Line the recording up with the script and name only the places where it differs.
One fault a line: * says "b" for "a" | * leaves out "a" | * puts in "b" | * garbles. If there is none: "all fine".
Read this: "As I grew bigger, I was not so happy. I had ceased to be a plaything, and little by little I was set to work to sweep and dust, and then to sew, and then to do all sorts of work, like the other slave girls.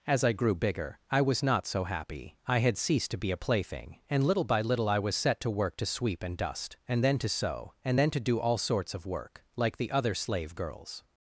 all fine